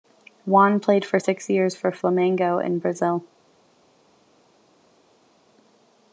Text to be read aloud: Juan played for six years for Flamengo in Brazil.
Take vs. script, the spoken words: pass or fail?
pass